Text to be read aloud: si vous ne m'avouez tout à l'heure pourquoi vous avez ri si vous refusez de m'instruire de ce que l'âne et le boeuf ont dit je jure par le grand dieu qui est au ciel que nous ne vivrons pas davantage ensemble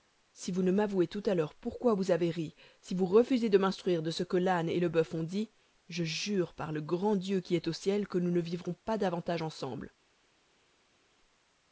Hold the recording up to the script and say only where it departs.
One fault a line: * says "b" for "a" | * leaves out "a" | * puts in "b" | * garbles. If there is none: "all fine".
all fine